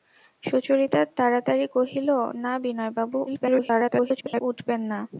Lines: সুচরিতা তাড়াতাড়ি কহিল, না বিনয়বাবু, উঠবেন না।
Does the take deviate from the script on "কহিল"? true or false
false